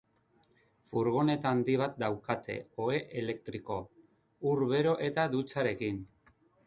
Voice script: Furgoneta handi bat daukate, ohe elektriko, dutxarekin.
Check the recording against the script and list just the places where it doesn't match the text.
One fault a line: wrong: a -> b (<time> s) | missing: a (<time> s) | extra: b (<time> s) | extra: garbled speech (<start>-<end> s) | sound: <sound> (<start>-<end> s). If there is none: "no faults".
extra: ur bero eta (4.5 s)